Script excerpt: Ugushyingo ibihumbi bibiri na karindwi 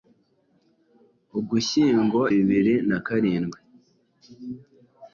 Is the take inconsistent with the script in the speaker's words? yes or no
yes